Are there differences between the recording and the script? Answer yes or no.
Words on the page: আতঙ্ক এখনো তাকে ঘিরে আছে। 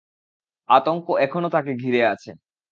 no